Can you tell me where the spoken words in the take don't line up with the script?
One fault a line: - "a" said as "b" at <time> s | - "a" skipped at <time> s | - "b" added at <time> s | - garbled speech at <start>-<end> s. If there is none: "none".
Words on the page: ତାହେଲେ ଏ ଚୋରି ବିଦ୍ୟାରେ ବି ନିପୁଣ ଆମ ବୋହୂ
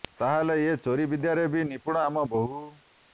none